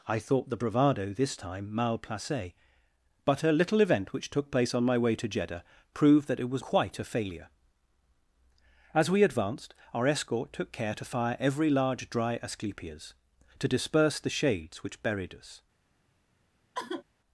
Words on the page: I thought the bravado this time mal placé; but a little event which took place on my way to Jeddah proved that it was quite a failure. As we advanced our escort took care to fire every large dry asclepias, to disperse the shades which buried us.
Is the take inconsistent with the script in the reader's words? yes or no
no